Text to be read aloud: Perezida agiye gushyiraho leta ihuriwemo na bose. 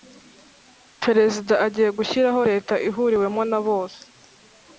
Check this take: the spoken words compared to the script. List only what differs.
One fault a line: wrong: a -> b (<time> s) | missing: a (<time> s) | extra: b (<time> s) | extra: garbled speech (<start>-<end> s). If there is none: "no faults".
no faults